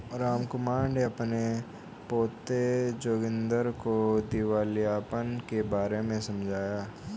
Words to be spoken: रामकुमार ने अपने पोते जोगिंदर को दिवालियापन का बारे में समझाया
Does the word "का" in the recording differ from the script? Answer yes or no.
yes